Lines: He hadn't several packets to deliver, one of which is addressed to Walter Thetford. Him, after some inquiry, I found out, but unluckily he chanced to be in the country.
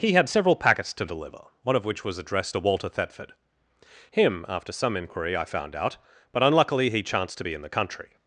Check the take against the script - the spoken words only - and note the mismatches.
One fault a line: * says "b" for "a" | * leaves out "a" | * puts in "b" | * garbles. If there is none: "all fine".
* says "had" for "hadn't"
* says "was" for "is"